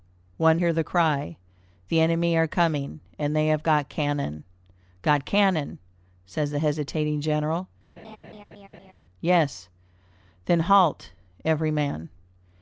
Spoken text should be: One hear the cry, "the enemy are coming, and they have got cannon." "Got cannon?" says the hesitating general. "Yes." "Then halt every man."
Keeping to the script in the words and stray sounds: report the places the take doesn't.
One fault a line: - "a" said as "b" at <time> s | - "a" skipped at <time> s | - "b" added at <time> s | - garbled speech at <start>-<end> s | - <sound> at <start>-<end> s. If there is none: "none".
- laugh at 8.0-8.9 s